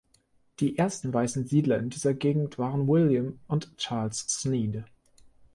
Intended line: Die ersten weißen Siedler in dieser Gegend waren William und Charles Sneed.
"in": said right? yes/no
yes